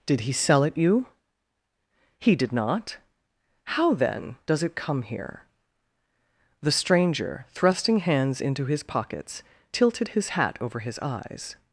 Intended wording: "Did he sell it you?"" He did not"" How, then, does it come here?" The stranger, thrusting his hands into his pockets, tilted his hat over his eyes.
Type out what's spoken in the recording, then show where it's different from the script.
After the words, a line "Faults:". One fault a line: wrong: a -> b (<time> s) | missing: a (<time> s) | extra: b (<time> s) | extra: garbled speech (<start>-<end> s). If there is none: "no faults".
"Did he sell it you?"" He did not"" How, then, does it come here?" The stranger, thrusting hands into his pockets, tilted his hat over his eyes.
Faults:
missing: his (8.0 s)